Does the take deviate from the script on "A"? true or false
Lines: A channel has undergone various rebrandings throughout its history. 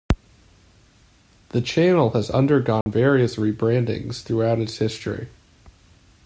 true